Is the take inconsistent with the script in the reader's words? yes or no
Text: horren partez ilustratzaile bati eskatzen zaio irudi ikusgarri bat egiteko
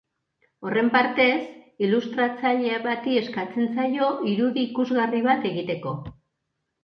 no